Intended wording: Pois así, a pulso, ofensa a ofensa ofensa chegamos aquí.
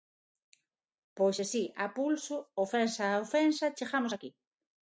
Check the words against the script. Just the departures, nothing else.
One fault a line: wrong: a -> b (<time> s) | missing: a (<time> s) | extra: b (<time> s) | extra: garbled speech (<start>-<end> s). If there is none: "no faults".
missing: ofensa (3.7 s)